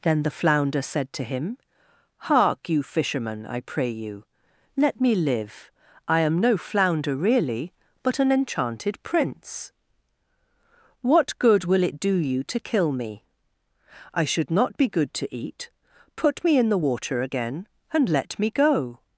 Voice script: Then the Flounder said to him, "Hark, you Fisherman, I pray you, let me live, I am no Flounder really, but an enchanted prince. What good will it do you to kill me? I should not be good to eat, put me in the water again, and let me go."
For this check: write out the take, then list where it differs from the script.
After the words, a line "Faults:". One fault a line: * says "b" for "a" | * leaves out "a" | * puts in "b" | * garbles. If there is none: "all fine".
Then the Flounder said to him, "Hark, you Fisherman, I pray you, let me live, I am no Flounder really, but an enchanted prince. What good will it do you to kill me? I should not be good to eat, put me in the water again, and let me go."
Faults:
all fine